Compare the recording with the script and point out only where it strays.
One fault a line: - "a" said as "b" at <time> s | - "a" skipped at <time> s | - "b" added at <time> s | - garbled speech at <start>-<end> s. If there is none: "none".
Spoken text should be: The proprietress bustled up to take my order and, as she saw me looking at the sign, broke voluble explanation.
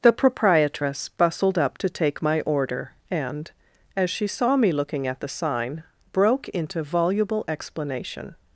- "into" added at 6.5 s